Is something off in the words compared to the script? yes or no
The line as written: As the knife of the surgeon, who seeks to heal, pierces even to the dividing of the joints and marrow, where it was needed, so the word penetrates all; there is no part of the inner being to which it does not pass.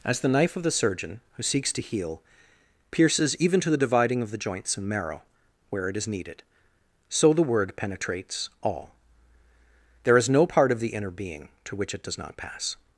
yes